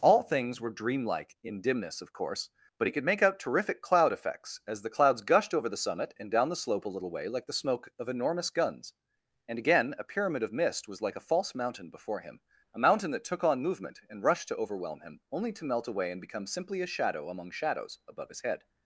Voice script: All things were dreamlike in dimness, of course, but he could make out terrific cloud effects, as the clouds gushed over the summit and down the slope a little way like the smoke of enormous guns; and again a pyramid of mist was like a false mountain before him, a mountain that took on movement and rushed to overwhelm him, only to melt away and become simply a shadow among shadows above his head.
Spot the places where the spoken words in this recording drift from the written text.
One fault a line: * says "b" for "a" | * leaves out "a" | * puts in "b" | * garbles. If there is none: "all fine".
all fine